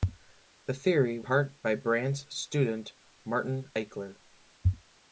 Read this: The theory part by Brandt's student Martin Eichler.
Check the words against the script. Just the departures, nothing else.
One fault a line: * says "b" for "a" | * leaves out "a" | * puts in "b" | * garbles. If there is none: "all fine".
all fine